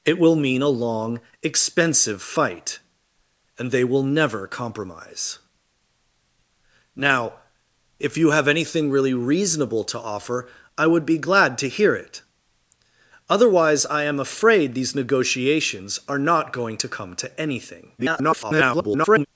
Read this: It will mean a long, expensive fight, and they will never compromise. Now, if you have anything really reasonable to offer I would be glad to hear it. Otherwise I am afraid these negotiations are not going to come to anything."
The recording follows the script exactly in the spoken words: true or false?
false